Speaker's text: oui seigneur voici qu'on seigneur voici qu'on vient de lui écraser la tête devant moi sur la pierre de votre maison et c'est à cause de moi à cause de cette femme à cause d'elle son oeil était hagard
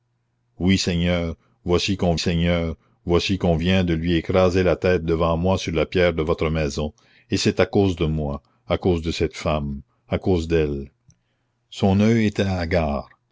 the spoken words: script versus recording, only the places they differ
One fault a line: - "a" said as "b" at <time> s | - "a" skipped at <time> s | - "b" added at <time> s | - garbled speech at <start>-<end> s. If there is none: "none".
none